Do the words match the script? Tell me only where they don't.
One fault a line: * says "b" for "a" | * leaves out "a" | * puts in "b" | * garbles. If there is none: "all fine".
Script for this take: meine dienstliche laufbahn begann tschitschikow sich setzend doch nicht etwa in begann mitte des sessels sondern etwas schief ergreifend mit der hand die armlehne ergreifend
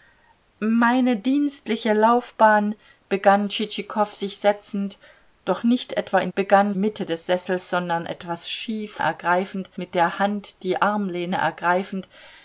all fine